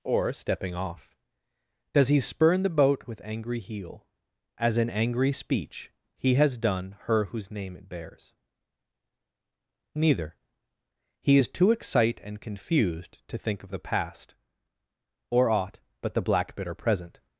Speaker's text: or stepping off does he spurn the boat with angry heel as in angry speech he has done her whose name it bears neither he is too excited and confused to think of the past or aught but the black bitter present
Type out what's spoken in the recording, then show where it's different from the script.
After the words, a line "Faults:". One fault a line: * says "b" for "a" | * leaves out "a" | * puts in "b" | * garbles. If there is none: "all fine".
or stepping off does he spurn the boat with angry heel as in angry speech he has done her whose name it bears neither he is too excite and confused to think of the past or aught but the black bitter present
Faults:
* says "excite" for "excited"